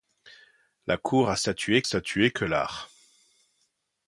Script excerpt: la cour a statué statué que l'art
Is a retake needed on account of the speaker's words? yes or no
no